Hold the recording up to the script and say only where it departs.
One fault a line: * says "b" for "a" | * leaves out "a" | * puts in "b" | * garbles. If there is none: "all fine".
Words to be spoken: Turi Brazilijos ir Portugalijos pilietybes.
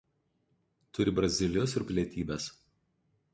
* leaves out "Portugalijos"